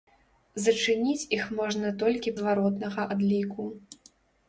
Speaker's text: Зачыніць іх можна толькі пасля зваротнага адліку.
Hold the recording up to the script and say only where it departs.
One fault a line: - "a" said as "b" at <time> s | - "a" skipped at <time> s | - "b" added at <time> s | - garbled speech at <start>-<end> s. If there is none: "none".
- "пасля" skipped at 2.4 s